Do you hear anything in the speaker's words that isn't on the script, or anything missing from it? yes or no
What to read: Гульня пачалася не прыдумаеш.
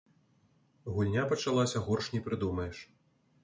yes